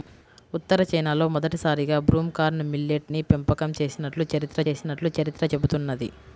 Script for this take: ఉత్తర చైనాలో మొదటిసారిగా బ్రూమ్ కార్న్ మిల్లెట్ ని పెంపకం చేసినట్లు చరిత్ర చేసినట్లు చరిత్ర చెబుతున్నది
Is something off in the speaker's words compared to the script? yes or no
no